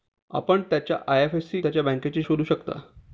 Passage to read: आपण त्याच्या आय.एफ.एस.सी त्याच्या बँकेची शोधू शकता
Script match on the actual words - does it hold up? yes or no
yes